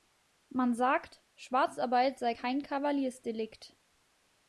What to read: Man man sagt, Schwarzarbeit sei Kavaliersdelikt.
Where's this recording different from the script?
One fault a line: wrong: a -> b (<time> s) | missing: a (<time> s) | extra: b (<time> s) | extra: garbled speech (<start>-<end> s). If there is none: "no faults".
missing: man (0.7 s)
extra: kein (2.3 s)